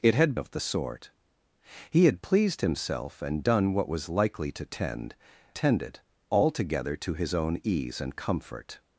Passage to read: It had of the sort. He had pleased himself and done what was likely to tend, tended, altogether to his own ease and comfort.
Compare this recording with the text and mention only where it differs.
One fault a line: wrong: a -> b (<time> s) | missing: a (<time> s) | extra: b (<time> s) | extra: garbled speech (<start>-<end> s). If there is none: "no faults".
no faults